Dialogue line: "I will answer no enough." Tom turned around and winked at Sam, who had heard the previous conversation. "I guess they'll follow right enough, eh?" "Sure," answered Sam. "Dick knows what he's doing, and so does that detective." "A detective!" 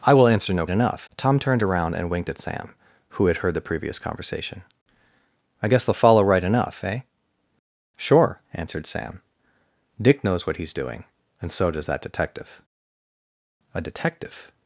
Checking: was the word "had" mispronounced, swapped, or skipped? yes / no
no